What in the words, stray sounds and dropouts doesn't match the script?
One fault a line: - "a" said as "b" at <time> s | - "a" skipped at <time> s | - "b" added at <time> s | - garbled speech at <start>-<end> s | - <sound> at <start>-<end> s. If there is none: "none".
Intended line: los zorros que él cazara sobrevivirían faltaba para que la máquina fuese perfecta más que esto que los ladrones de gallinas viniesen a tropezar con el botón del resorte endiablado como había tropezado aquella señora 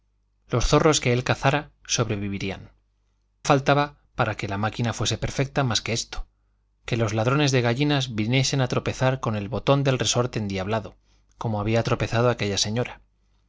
none